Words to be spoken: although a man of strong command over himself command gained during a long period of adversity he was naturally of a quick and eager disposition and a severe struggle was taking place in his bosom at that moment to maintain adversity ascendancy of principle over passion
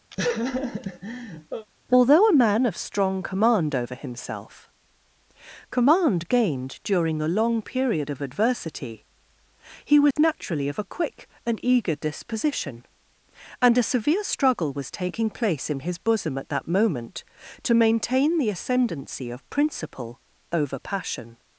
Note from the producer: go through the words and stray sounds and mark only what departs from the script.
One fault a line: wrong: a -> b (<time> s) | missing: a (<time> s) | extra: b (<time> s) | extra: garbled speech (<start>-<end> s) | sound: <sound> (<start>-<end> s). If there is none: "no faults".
sound: laugh (0.1-1.7 s)
sound: dropout (10.1-10.2 s)
wrong: adversity -> the (18.4 s)